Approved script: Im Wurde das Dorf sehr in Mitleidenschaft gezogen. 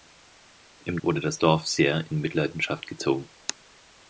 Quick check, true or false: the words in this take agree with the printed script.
true